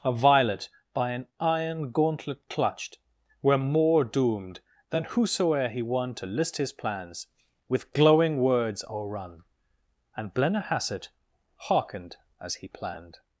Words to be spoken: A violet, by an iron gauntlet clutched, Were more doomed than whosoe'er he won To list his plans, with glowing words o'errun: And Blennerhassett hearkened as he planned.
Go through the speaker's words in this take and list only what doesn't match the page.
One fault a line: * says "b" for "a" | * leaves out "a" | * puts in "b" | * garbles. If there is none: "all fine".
all fine